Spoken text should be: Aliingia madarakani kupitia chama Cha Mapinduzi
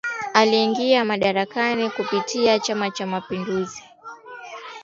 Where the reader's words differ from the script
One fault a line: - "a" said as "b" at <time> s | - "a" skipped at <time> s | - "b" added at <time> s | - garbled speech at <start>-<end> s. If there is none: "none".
none